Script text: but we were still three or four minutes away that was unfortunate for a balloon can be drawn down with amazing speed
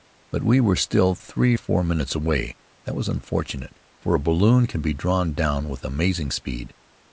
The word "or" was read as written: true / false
false